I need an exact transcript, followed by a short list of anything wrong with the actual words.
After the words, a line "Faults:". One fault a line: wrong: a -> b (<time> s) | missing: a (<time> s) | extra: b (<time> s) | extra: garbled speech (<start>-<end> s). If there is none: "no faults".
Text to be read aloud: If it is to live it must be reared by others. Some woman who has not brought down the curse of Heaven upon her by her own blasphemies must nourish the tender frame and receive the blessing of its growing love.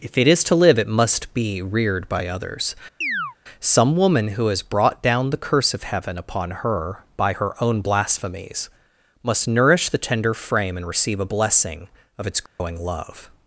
If it is to live it must be reared by others. Some woman who has brought down the curse of Heaven upon her by her own blasphemies must nourish the tender frame and receive a blessing of its growing love.
Faults:
missing: not (4.6 s)
wrong: the -> a (11.2 s)